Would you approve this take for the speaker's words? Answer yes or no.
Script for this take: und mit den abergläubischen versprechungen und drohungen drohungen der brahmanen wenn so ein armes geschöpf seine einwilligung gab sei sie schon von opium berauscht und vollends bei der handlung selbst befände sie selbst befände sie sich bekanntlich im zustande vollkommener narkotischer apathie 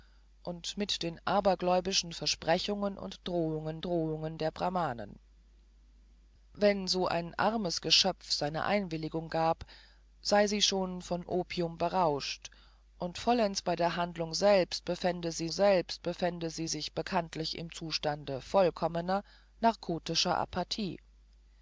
yes